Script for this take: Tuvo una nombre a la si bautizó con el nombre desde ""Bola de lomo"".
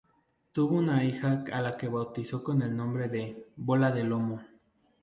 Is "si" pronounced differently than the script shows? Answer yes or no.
yes